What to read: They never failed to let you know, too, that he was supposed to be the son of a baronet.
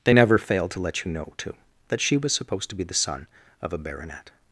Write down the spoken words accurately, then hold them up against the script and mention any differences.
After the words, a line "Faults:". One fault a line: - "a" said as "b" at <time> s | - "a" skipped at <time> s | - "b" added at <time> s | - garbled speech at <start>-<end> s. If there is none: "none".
They never failed to let you know, too, that she was supposed to be the son of a baronet.
Faults:
- "he" said as "she" at 2.0 s